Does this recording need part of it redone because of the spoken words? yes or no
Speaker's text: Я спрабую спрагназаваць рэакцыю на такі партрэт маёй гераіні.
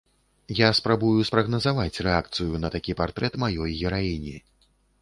no